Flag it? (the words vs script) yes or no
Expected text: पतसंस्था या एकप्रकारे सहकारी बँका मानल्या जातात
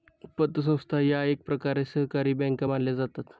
no